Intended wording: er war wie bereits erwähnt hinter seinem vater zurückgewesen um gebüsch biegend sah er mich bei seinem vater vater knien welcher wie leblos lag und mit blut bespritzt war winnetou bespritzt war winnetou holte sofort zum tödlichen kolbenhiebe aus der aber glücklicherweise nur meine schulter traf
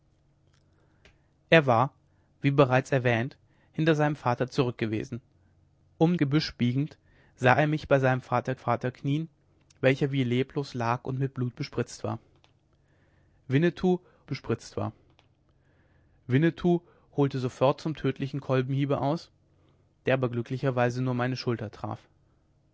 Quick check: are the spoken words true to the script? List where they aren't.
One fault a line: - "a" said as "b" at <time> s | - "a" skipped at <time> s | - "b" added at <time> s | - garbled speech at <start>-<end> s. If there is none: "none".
none